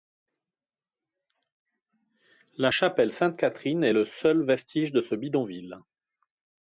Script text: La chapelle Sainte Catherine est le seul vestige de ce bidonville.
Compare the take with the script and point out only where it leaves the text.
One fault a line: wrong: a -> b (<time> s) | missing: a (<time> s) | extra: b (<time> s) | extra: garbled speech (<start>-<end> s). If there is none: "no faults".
no faults